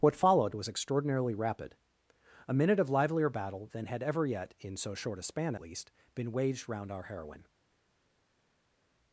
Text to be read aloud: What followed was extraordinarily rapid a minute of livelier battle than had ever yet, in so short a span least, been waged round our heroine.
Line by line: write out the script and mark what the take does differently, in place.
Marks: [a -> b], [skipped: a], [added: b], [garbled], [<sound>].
What followed was extraordinarily rapid a minute of livelier battle than had ever yet, in so short a span least, been waged round our heroine.